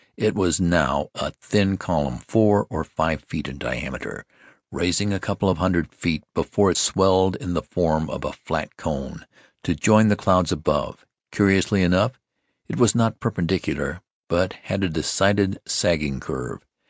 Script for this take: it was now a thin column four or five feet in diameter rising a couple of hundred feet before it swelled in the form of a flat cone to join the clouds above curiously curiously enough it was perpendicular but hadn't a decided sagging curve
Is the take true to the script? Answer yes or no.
no